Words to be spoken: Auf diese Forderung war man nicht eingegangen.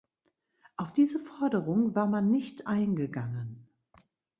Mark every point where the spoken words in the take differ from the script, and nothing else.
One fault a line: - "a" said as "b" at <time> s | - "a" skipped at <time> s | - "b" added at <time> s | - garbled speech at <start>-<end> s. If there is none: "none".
none